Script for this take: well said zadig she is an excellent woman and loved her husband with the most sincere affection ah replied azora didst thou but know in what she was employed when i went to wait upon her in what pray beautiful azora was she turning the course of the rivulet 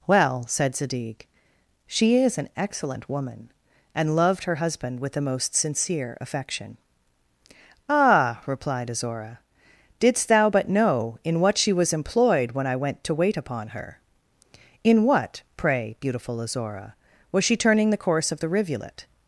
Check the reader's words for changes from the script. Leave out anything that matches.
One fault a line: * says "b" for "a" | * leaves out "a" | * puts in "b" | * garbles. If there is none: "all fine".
all fine